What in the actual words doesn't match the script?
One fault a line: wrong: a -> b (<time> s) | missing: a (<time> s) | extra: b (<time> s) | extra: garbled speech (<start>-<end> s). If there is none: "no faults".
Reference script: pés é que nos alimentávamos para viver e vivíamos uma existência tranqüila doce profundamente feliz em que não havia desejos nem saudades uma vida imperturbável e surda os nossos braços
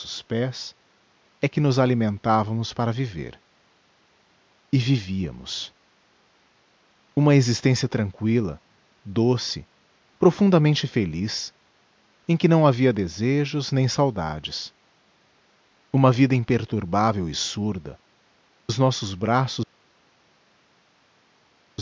no faults